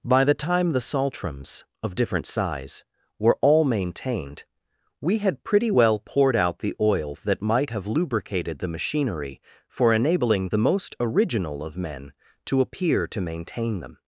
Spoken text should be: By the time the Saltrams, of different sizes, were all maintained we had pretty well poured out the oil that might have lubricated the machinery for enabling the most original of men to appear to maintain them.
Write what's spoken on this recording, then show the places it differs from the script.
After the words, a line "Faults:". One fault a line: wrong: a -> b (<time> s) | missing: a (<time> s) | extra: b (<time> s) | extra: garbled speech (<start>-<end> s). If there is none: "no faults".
By the time the Saltrams, of different size, were all maintained we had pretty well poured out the oil that might have lubricated the machinery for enabling the most original of men to appear to maintain them.
Faults:
wrong: sizes -> size (2.2 s)